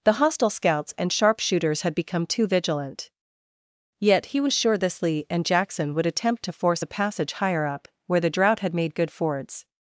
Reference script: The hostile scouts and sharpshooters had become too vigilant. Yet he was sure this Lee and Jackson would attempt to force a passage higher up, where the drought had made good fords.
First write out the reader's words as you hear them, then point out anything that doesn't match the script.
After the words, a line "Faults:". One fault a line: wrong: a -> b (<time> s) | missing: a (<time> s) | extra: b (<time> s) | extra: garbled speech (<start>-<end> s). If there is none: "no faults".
The hostile scouts and sharpshooters had become too vigilant. Yet he was sure this Lee and Jackson would attempt to force a passage higher up, where the drought had made good fords.
Faults:
no faults